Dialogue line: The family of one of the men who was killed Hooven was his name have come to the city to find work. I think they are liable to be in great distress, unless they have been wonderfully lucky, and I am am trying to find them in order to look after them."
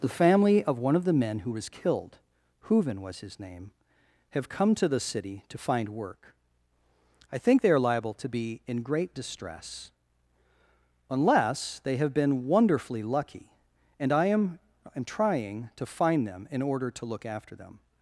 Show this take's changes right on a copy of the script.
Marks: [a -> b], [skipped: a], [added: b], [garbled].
The family of one of the men who was killed Hooven was his name have come to the city to find work. I think they are liable to be in great distress, unless they have been wonderfully lucky, and I am am trying to find them in order to look after them."